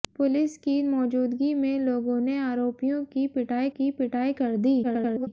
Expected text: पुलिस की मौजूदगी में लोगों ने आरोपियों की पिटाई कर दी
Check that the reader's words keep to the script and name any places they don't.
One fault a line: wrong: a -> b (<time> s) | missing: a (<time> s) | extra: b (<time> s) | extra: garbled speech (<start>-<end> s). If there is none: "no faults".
extra: की पिटाई (3.7 s)
extra: garbled speech (4.8-5.3 s)